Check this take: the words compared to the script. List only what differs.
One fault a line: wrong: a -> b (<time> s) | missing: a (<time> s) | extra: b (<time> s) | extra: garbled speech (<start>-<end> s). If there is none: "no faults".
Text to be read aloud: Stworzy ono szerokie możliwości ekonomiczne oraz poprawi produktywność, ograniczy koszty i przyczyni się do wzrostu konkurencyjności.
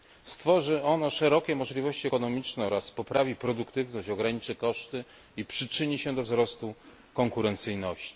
no faults